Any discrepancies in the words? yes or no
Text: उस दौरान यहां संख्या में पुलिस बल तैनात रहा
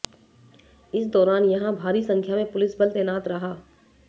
yes